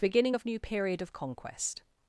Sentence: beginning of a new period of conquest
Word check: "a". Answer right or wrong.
wrong